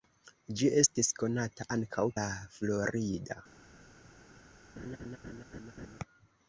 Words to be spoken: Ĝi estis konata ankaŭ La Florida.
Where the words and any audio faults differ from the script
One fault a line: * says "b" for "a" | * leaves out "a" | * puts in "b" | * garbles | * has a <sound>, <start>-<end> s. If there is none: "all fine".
* has a laugh, 4.8-6.0 s